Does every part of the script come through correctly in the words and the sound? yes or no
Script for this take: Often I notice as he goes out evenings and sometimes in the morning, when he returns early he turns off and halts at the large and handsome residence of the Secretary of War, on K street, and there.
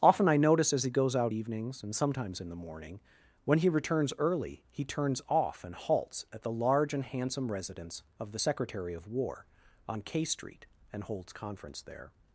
no